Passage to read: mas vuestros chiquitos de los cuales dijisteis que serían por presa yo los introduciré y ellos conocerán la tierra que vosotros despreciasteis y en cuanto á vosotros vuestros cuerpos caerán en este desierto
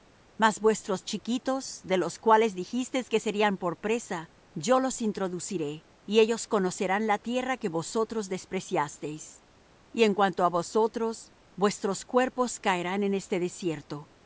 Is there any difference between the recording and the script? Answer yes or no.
no